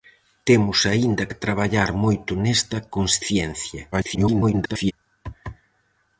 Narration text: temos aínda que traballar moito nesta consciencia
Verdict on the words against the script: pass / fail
fail